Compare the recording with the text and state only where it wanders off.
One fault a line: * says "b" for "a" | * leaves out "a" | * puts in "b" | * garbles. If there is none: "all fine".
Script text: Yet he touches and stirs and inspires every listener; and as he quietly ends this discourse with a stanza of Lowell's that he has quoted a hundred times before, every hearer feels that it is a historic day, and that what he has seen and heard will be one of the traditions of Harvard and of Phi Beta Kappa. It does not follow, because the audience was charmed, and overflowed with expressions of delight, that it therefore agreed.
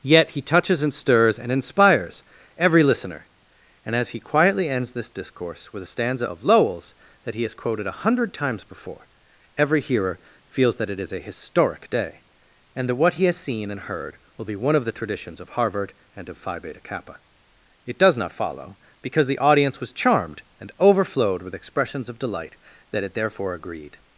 all fine